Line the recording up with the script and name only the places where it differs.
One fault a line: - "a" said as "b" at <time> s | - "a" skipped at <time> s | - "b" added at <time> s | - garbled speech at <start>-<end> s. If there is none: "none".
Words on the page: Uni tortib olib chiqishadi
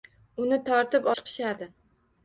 - "olib" skipped at 1.1 s